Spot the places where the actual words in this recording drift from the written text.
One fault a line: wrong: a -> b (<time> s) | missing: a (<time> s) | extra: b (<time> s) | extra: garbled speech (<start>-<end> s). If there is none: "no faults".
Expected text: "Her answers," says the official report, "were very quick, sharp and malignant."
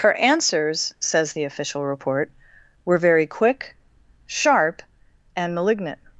no faults